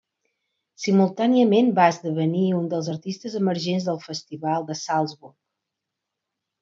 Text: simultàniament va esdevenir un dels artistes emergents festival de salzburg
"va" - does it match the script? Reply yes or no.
yes